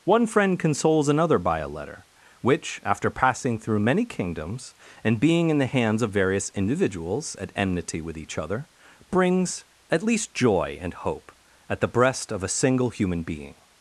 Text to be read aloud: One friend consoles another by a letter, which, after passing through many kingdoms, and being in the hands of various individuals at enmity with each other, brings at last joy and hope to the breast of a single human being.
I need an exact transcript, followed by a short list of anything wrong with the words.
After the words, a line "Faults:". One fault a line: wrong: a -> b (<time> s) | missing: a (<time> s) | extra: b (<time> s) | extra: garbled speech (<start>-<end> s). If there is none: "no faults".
One friend consoles another by a letter, which, after passing through many kingdoms, and being in the hands of various individuals at enmity with each other, brings at least joy and hope at the breast of a single human being.
Faults:
wrong: last -> least (10.0 s)
wrong: to -> at (11.7 s)